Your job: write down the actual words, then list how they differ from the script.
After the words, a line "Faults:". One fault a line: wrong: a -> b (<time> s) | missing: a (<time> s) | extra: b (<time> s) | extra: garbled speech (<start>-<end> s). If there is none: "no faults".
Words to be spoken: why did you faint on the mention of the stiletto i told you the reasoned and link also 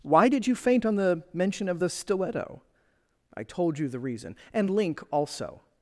why did you faint on the mention of the stiletto i told you the reason and link also
Faults:
wrong: reasoned -> reason (4.0 s)